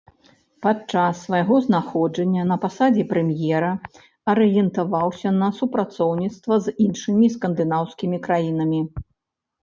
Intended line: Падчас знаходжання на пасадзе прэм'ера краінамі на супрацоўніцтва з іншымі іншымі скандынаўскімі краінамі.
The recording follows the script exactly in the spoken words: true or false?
false